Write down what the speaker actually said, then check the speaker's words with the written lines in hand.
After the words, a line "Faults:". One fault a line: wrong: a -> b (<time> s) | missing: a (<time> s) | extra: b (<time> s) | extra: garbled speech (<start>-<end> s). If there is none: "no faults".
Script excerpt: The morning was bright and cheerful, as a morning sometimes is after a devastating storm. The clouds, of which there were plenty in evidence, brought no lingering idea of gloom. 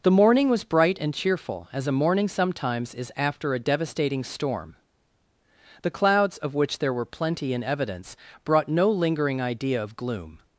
The morning was bright and cheerful, as a morning sometimes is after a devastating storm. The clouds, of which there were plenty in evidence, brought no lingering idea of gloom.
Faults:
no faults